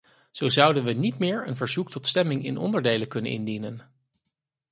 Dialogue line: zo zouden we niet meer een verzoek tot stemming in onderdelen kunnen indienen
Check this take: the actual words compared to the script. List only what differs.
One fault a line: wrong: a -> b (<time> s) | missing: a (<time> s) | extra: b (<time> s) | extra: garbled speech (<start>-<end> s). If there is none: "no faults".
no faults